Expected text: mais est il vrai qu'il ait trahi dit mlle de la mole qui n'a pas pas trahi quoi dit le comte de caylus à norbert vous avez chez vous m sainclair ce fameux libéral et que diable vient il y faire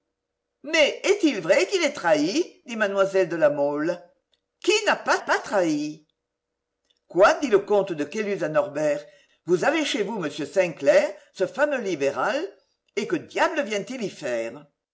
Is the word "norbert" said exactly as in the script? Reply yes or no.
yes